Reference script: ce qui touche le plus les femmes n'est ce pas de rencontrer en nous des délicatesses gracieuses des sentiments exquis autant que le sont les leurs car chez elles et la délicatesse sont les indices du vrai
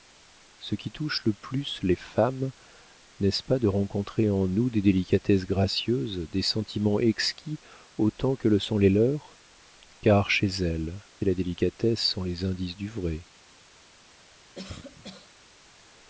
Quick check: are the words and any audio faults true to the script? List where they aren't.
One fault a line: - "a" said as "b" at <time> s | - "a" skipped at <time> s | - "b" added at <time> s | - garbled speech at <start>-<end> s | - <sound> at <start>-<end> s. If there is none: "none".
- cough at 14.5-15.3 s